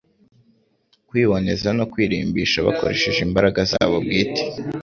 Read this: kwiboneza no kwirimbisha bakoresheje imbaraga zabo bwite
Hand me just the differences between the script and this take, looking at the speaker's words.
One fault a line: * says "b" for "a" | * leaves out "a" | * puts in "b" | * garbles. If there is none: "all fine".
all fine